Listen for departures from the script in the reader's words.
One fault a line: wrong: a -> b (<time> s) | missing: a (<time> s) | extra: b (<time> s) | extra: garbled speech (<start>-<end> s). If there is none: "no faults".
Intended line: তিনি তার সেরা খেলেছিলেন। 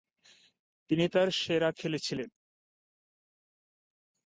no faults